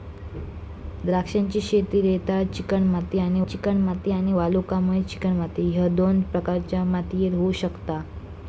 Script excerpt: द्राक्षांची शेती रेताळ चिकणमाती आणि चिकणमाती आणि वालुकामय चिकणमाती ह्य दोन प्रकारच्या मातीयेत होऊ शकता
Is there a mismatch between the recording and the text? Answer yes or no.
no